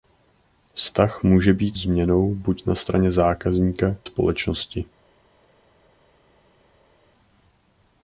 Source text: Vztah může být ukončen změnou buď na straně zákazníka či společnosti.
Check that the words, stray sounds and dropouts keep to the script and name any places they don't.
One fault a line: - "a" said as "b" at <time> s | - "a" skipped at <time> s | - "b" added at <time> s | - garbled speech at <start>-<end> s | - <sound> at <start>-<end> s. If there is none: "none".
- "ukončen" skipped at 1.8 s
- "či" skipped at 4.0 s